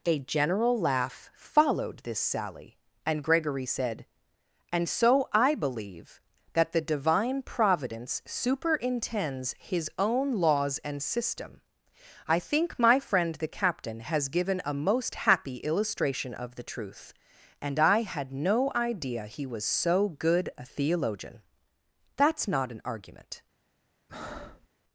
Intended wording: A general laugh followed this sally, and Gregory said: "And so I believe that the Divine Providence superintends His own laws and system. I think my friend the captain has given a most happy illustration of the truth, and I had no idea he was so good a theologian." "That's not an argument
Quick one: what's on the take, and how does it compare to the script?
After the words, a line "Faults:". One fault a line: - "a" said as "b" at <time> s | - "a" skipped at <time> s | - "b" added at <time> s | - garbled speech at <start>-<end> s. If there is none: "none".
A general laugh followed this sally, and Gregory said: "And so I believe that the Divine Providence superintends His own laws and system. I think my friend the captain has given a most happy illustration of the truth, and I had no idea he was so good a theologian." "That's not an argument
Faults:
none